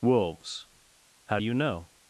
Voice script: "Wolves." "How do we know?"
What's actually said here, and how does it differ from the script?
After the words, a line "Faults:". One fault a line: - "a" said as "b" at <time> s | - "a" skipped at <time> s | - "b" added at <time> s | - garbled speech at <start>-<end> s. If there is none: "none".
"Wolves." "How do you know?"
Faults:
- "we" said as "you" at 1.4 s